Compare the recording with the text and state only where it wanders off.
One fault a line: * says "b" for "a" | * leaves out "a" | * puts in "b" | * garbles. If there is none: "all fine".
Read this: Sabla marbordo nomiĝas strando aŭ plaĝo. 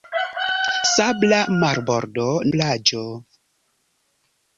* leaves out "nomiĝas strando aŭ"